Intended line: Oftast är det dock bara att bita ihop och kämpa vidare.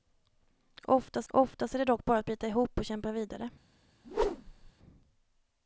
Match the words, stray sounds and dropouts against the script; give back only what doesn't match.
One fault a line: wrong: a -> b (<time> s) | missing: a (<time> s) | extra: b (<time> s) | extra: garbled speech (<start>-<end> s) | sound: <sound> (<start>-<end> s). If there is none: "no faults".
extra: oftast (1.3 s)
sound: whoosh (4.0-4.7 s)